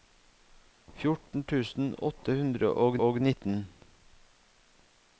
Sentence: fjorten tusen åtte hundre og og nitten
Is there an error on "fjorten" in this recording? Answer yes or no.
no